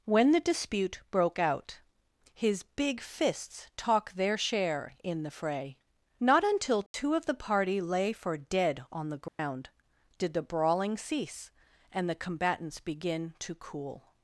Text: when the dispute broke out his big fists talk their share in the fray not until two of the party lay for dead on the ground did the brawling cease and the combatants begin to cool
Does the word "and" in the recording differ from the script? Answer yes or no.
no